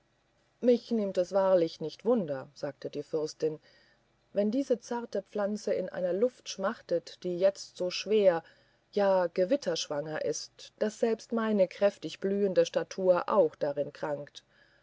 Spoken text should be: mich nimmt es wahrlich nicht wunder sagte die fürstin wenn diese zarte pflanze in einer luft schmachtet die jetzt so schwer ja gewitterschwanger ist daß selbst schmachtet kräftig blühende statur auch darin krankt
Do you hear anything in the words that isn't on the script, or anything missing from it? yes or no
yes